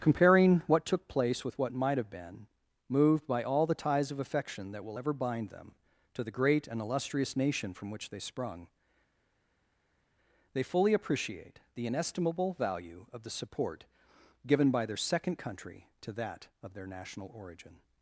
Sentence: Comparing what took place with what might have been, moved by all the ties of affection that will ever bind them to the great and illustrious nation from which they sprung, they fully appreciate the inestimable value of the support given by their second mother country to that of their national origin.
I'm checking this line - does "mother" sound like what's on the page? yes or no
no